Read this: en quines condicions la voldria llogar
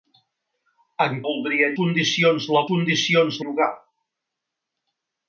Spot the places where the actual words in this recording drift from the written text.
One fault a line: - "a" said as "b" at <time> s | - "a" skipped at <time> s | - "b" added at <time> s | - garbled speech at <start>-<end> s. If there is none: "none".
- "quines" said as "voldria" at 1.3 s
- "voldria" said as "condicions" at 2.7 s